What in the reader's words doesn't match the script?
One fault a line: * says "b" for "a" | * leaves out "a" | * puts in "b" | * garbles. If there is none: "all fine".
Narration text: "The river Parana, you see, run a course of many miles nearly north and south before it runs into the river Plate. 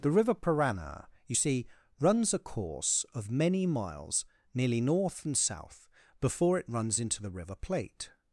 * says "runs" for "run"